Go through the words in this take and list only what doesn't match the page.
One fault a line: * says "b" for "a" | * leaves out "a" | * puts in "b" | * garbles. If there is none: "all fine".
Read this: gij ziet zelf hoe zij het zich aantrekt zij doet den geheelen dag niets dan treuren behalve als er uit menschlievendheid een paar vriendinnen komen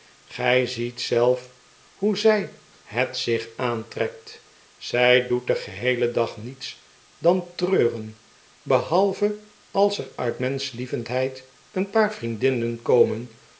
all fine